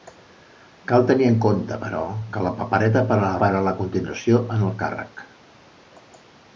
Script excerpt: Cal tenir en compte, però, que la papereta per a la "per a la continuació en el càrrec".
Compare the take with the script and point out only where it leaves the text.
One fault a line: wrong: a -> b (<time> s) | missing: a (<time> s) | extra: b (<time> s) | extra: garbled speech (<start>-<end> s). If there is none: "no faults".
no faults